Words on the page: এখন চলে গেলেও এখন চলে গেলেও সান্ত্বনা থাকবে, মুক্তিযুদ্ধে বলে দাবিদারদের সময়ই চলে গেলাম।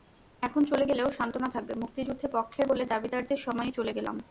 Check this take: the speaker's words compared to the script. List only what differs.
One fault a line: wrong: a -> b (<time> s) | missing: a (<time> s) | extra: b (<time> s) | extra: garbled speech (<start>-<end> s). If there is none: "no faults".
missing: এখন চলে গেলেও (1.1 s)
extra: পক্ষের (2.3 s)